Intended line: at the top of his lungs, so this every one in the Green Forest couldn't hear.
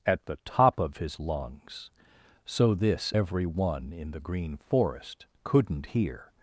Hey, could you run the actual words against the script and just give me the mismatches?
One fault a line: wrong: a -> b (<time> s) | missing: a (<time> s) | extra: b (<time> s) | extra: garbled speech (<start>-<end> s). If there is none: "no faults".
no faults